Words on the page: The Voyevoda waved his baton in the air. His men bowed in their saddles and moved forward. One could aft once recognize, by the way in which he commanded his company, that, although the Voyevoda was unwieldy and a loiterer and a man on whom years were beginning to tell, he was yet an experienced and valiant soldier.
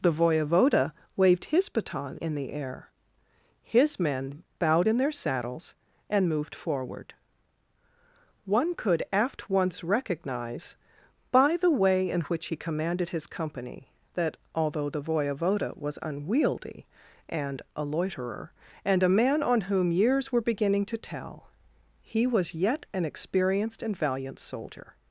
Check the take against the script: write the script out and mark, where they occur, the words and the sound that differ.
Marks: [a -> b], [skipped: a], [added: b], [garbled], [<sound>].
The Voyevoda waved his baton in the air. His men bowed in their saddles and moved forward. One could aft once recognize, by the way in which he commanded his company, that, although the Voyevoda was unwieldy and a loiterer and a man on whom years were beginning to tell, he was yet an experienced and valiant soldier.